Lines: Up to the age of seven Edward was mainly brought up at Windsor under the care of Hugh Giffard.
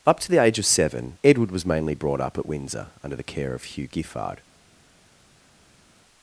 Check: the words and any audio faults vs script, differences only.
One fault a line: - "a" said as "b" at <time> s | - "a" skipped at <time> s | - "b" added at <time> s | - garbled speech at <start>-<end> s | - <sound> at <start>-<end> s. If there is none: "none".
none